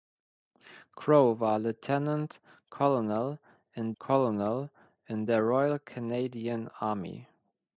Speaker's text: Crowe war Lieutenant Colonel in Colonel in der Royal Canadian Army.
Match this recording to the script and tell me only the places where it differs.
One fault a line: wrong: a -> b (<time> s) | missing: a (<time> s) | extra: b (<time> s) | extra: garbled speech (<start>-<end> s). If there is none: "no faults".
no faults